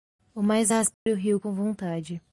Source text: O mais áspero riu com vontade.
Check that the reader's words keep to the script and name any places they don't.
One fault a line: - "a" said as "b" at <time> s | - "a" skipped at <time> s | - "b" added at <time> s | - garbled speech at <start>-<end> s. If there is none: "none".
none